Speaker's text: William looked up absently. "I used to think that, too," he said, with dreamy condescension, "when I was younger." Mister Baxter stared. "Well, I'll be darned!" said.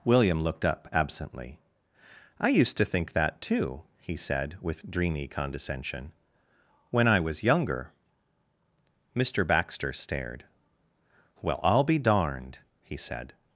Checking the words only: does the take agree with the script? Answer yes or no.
no